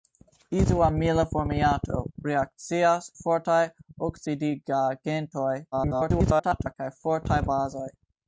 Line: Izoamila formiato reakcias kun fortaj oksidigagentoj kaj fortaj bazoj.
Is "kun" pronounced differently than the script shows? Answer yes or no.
yes